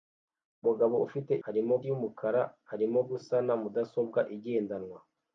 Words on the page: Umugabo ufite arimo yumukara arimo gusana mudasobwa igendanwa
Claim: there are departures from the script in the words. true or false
false